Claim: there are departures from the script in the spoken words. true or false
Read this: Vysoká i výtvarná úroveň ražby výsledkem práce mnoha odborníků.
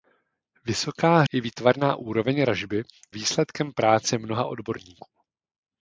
false